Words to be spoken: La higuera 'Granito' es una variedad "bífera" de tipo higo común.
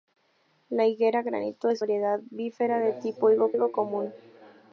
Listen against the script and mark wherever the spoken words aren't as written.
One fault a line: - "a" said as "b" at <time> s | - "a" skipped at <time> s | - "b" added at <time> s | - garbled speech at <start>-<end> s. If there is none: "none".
- "una" skipped at 1.8 s
- "higo" added at 3.5 s